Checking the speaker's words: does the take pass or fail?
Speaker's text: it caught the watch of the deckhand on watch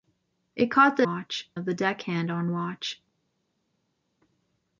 pass